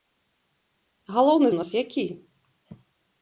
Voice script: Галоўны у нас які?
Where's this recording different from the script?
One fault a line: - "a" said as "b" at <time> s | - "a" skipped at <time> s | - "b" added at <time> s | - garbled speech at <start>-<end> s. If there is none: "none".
none